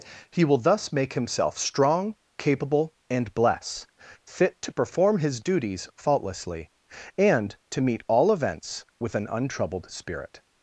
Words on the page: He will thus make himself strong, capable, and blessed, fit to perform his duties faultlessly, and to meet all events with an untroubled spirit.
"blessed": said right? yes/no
no